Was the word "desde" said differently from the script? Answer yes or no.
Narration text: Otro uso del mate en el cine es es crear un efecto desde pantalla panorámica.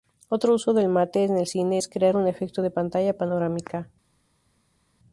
yes